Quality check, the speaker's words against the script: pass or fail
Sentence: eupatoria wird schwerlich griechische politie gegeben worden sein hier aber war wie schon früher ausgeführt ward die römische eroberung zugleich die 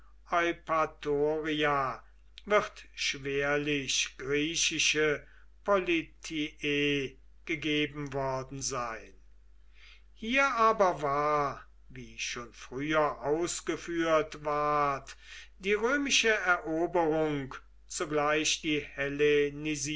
pass